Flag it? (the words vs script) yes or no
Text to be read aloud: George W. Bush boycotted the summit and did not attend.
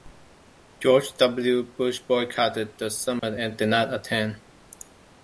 no